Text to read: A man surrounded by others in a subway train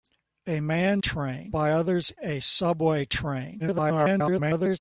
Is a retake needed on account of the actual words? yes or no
yes